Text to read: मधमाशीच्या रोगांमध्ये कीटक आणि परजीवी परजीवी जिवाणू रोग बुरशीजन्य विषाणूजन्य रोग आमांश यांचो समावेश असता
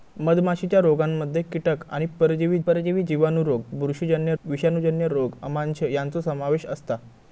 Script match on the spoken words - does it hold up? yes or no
yes